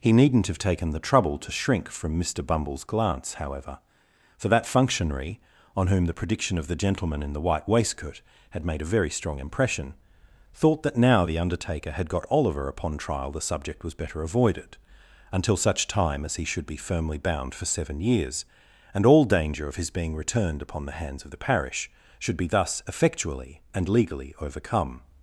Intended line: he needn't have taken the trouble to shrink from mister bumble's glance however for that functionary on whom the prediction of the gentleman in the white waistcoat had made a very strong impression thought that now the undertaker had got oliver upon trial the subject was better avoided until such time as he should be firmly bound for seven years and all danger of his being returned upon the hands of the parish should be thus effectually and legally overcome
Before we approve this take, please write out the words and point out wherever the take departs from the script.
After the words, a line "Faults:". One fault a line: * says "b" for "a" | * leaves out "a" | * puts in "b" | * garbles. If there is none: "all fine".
he needn't have taken the trouble to shrink from mister bumble's glance however for that functionary on whom the prediction of the gentleman in the white waistcoat had made a very strong impression thought that now the undertaker had got oliver upon trial the subject was better avoided until such time as he should be firmly bound for seven years and all danger of his being returned upon the hands of the parish should be thus effectually and legally overcome
Faults:
all fine